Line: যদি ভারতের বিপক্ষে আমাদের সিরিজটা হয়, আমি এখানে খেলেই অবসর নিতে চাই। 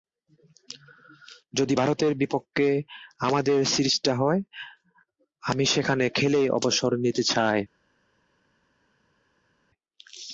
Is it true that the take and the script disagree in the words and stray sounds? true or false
true